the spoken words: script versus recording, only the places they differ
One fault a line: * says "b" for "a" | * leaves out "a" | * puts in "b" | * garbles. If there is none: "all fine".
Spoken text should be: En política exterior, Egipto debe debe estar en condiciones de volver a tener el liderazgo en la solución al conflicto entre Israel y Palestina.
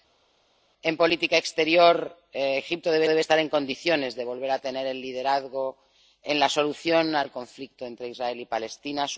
all fine